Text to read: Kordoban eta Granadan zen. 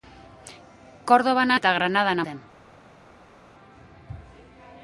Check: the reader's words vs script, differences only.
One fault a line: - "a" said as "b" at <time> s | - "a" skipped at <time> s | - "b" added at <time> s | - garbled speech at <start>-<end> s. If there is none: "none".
none